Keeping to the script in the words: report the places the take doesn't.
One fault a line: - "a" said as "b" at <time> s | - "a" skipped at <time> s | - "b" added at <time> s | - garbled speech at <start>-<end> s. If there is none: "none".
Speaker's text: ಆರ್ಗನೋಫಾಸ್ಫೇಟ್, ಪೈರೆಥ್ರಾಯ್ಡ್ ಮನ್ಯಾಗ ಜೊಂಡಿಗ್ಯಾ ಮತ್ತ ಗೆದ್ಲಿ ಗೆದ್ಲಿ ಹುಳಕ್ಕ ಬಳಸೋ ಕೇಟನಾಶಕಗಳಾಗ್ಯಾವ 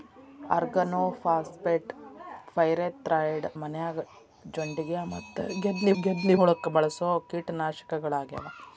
none